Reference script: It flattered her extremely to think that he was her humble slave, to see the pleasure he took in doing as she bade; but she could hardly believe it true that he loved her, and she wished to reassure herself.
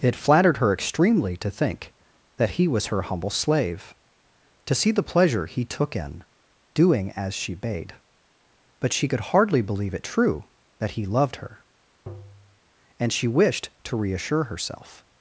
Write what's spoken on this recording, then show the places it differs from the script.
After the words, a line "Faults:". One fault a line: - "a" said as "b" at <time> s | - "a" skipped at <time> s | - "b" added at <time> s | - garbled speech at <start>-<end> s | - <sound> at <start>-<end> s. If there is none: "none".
It flattered her extremely to think that he was her humble slave, to see the pleasure he took in doing as she bade; but she could hardly believe it true that he loved her, and she wished to reassure herself.
Faults:
- tap at 12.1-12.6 s